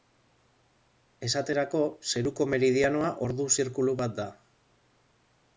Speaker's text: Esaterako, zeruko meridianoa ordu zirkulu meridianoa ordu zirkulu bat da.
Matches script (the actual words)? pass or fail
fail